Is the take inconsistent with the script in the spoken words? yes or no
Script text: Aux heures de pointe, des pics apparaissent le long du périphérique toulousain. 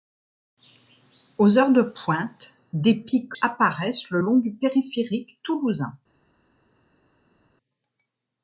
no